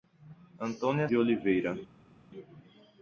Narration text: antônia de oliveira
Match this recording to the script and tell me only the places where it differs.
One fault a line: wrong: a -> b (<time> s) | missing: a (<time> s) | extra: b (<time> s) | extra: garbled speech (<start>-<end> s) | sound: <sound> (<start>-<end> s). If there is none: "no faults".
no faults